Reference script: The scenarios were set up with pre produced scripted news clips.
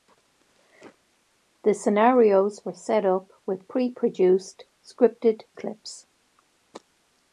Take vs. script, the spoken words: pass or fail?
fail